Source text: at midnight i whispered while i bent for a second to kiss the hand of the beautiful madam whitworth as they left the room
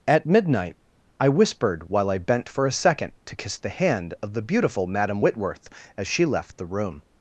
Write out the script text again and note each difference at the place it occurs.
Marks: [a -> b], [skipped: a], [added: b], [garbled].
at midnight i whispered while i bent for a second to kiss the hand of the beautiful madam whitworth as [they -> she] left the room